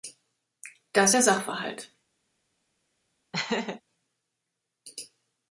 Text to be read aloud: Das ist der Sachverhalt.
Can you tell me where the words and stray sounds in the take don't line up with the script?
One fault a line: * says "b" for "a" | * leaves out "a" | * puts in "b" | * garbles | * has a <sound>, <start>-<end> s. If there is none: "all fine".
* leaves out "ist"
* has a laugh, 3.3-3.8 s